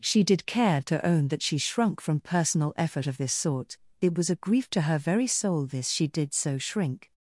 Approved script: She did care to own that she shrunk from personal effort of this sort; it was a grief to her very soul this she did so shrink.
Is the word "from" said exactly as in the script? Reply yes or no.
yes